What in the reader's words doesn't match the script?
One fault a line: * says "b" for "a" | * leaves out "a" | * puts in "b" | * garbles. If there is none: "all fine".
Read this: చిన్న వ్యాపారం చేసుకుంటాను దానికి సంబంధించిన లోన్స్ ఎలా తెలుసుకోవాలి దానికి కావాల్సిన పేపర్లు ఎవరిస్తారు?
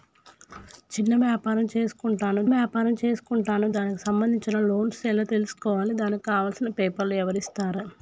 * puts in "వ్యాపారం చేసుకుంటాను"